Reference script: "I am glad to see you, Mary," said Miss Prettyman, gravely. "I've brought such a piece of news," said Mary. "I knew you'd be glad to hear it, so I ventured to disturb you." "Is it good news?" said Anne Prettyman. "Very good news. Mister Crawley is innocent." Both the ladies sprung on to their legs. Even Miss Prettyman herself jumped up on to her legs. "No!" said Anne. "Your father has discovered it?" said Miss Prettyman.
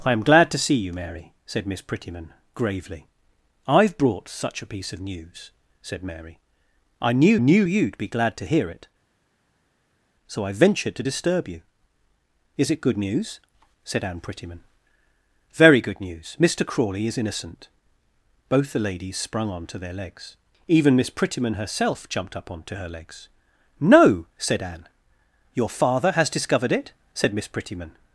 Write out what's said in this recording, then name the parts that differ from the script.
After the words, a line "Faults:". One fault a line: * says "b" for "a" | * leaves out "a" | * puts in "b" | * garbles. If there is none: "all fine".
"I am glad to see you, Mary," said Miss Prettyman, gravely. "I've brought such a piece of news," said Mary. "I knew knew you'd be glad to hear it, so I ventured to disturb you." "Is it good news?" said Anne Prettyman. "Very good news. Mister Crawley is innocent." Both the ladies sprung on to their legs. Even Miss Prettyman herself jumped up on to her legs. "No!" said Anne. "Your father has discovered it?" said Miss Prettyman.
Faults:
* puts in "knew"